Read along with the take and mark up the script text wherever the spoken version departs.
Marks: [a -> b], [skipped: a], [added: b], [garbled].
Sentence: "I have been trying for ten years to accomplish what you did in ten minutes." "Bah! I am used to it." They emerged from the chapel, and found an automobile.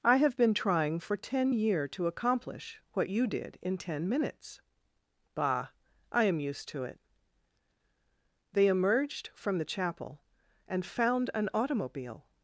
"I have been trying for ten [years -> year] to accomplish what you did in ten minutes." "Bah! I am used to it." They emerged from the chapel, and found an automobile.